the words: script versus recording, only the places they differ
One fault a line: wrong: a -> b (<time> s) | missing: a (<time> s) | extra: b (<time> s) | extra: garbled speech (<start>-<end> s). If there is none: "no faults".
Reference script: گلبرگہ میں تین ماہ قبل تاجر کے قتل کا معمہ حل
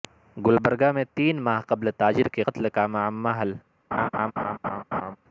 no faults